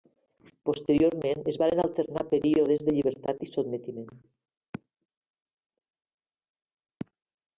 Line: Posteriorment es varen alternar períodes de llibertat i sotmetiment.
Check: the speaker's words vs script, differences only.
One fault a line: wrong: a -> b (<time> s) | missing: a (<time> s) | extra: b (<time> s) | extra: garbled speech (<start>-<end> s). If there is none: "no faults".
no faults